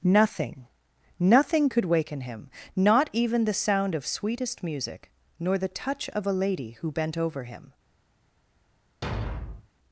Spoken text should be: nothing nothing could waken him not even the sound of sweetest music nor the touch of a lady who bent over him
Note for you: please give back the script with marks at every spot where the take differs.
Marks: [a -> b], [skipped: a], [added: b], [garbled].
nothing nothing could waken him not even the sound of sweetest music nor the touch of a lady who bent over him